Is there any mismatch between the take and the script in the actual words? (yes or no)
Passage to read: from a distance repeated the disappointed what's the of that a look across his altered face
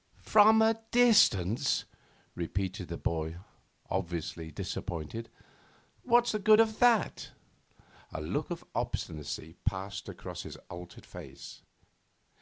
yes